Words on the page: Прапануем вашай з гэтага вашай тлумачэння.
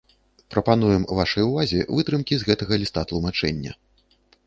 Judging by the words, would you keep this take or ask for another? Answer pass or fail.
fail